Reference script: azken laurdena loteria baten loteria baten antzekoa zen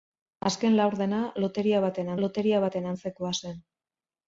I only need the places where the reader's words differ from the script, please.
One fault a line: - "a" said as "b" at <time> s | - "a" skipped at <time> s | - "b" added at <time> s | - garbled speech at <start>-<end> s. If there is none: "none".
none